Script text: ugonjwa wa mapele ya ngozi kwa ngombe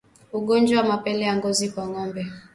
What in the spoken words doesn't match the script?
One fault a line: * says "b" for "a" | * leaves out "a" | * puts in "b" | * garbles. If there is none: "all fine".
all fine